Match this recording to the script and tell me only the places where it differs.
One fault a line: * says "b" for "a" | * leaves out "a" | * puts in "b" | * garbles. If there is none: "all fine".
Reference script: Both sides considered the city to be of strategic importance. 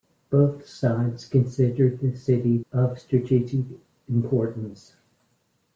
* leaves out "to be"